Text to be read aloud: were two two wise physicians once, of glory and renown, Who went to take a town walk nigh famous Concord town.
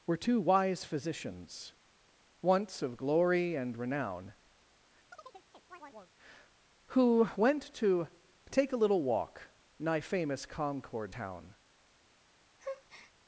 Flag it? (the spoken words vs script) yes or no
yes